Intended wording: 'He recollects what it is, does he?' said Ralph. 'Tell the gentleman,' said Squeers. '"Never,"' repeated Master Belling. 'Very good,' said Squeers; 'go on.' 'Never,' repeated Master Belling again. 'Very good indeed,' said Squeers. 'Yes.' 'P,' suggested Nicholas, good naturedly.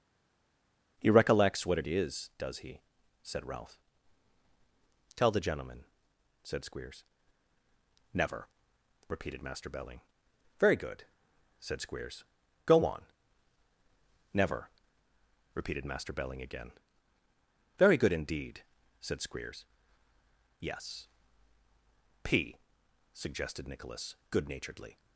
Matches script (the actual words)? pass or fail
pass